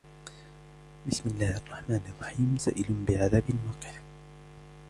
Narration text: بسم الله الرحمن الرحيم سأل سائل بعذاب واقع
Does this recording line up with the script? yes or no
no